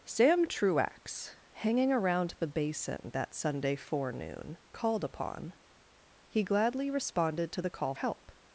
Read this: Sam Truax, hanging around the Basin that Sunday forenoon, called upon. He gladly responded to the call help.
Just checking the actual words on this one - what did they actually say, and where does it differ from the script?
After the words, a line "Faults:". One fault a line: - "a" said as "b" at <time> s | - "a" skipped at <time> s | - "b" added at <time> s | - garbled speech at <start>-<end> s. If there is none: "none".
Sam Truax, hanging around the Basin that Sunday forenoon, called upon. He gladly responded to the call help.
Faults:
none